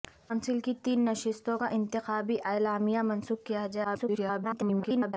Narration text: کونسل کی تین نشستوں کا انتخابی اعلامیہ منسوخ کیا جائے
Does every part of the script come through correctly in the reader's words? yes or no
no